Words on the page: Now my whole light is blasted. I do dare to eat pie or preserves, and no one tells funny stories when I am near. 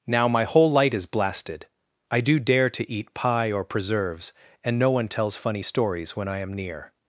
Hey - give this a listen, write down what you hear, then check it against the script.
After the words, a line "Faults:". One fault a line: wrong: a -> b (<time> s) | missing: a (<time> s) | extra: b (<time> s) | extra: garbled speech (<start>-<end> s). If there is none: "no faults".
Now my whole light is blasted. I do dare to eat pie or preserves, and no one tells funny stories when I am near.
Faults:
no faults